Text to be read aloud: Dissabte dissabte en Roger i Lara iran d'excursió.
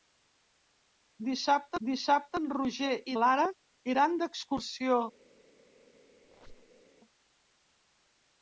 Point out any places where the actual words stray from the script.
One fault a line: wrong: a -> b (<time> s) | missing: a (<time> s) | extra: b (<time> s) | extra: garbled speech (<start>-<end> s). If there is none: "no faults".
no faults